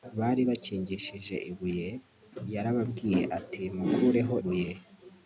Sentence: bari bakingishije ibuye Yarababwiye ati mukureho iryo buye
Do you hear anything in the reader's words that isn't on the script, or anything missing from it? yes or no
yes